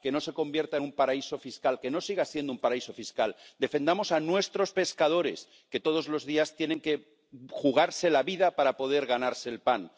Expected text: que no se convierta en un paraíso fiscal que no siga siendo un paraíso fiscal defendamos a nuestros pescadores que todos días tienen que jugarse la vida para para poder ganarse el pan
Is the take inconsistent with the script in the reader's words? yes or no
yes